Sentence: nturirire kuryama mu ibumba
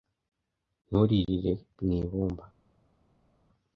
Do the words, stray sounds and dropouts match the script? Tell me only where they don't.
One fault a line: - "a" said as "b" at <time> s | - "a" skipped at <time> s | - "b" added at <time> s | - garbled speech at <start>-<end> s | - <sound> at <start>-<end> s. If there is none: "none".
- "kuryama" skipped at 1.5 s